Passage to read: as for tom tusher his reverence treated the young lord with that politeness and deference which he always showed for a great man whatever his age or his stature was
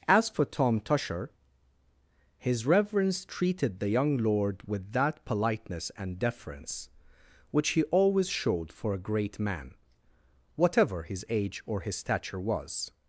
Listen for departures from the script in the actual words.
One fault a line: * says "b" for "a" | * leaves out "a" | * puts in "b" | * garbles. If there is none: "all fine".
all fine